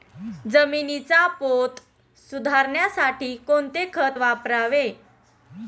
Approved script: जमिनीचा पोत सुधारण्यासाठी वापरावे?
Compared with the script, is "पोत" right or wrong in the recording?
right